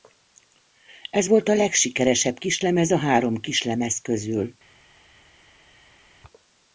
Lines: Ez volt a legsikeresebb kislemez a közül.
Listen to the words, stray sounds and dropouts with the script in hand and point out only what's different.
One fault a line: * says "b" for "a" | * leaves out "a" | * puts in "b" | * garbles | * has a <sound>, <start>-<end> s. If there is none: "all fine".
* puts in "három kislemez"